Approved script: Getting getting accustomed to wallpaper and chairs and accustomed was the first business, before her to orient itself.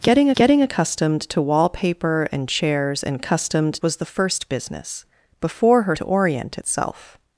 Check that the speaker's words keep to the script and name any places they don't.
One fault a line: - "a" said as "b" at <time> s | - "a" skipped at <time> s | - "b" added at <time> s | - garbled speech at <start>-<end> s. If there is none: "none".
none